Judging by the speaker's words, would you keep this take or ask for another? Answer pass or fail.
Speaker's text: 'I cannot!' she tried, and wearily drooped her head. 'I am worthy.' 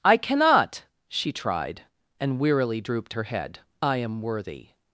pass